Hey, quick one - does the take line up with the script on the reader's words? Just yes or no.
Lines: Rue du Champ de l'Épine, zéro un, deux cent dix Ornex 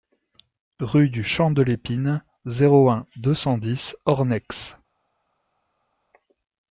yes